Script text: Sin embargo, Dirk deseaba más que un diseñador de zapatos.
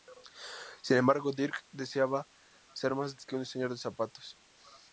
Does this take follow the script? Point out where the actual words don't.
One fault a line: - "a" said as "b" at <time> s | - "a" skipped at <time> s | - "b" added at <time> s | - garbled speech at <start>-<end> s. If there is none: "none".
- "ser" added at 2.7 s